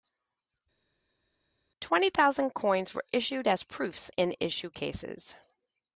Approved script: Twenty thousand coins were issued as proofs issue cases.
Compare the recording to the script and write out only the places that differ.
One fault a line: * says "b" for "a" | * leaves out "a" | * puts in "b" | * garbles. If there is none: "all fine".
* puts in "in"